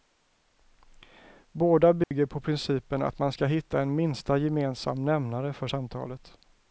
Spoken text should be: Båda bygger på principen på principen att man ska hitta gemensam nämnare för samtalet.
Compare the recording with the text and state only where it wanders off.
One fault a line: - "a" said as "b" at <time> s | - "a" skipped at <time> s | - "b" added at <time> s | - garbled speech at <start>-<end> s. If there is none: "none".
- "på principen" skipped at 3.0 s
- "en minsta" added at 3.8 s